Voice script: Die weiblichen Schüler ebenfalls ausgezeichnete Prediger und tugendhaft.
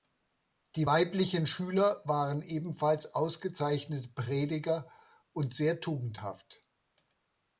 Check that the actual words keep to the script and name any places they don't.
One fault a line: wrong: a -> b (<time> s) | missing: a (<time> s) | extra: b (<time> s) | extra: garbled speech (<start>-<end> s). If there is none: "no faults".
extra: waren (2.0 s)
extra: sehr (5.5 s)